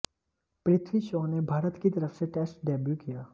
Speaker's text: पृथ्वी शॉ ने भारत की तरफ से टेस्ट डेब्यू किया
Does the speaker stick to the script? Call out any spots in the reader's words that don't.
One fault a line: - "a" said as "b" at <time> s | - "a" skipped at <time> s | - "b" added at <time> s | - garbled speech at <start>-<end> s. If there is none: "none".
none